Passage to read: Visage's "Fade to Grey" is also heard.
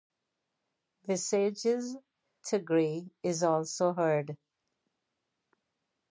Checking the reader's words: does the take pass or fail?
fail